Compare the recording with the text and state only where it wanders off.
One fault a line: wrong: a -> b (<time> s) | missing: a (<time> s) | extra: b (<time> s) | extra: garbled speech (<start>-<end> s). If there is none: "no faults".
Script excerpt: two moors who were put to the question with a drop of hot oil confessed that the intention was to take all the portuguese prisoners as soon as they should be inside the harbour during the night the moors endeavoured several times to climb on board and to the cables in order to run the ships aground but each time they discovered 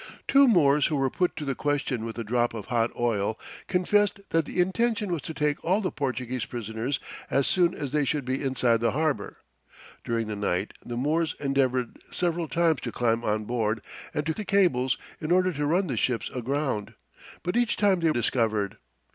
no faults